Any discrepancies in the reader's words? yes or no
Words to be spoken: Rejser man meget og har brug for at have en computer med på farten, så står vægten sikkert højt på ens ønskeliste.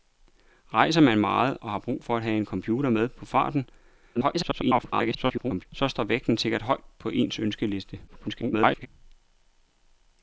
yes